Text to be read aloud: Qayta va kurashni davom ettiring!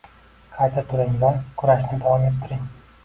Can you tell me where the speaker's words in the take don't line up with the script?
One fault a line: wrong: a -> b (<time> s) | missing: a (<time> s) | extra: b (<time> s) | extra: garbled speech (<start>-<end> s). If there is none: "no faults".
extra: turing (0.9 s)